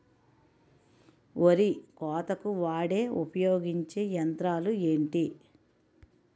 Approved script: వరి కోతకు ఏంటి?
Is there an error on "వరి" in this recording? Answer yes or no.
no